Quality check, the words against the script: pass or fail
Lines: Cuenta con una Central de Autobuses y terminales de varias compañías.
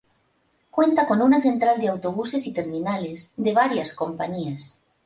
pass